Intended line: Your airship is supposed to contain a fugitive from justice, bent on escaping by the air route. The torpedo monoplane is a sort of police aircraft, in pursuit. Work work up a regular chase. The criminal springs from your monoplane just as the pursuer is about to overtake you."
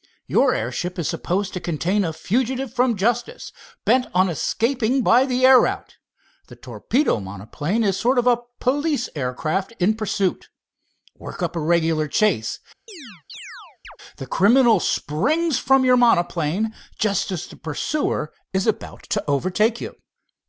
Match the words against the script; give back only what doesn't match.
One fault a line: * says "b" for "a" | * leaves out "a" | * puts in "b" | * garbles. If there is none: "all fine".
* leaves out "work"